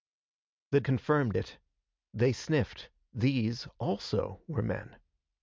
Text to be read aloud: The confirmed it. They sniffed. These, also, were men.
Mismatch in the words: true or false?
false